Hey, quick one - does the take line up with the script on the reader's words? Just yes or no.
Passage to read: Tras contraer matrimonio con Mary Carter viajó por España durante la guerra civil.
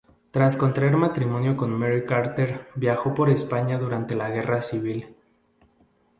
yes